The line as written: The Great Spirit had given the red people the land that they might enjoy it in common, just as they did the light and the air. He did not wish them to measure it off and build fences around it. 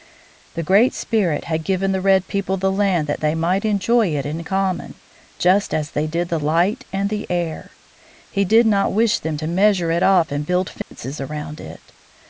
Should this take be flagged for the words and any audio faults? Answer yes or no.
yes